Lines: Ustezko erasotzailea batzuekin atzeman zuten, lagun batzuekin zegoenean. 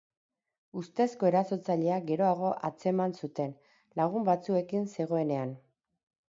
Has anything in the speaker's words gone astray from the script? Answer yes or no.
yes